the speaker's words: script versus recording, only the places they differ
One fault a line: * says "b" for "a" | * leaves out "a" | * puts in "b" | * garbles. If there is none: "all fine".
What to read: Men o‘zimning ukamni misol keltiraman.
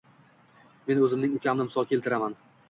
all fine